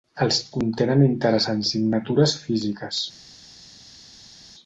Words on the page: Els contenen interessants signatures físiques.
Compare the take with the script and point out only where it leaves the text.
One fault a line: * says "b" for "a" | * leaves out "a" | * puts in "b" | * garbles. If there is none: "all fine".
all fine